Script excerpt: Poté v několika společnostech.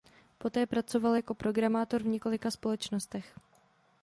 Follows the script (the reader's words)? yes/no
no